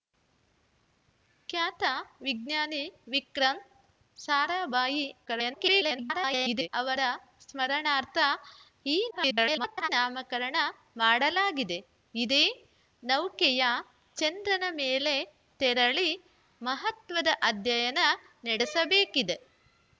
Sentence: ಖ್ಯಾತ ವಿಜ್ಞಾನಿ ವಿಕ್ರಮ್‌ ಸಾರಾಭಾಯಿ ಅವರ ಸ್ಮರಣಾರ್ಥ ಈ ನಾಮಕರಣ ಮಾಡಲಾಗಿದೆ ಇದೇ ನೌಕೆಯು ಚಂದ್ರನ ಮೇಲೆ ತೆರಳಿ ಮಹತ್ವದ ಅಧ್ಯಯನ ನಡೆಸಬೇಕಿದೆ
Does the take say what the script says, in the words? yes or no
no